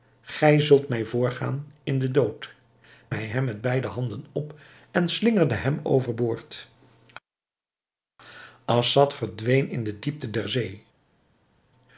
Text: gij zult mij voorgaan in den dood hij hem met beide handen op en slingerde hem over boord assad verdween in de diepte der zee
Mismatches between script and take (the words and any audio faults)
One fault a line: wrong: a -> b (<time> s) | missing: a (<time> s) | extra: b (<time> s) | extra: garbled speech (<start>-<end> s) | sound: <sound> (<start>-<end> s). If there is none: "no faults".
no faults